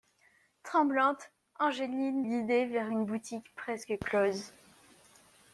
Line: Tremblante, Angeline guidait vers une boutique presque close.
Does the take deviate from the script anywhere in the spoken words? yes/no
no